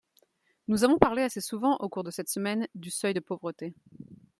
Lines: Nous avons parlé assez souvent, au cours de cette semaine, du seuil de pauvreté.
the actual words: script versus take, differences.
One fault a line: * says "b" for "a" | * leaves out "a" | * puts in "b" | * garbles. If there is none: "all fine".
all fine